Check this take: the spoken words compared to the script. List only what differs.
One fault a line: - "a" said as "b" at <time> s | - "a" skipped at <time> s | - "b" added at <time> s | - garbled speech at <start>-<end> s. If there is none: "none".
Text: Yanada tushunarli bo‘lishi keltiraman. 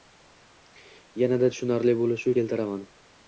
none